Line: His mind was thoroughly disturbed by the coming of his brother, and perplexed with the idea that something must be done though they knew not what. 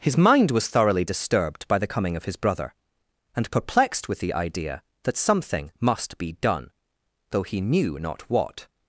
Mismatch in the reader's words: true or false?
true